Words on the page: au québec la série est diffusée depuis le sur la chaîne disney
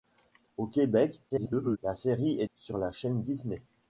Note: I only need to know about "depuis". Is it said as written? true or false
false